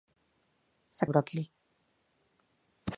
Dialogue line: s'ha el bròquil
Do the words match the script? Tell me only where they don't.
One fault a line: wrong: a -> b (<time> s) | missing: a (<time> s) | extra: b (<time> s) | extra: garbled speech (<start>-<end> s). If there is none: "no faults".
no faults